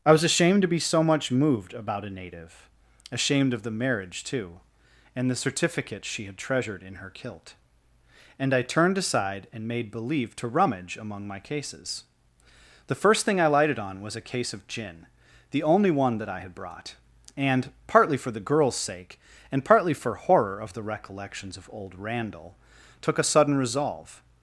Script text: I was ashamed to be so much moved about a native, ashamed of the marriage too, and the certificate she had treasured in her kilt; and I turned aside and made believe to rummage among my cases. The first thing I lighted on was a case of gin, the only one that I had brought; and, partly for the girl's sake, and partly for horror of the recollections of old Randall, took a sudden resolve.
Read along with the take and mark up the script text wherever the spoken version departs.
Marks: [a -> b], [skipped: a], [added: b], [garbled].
I was ashamed to be so much moved about a native, ashamed of the marriage too, and the certificate she had treasured in her kilt; and I turned aside and made believe to rummage among my cases. The first thing I lighted on was a case of gin, the only one that I had brought; and, partly for the girl's sake, and partly for horror of the recollections of old Randall, took a sudden resolve.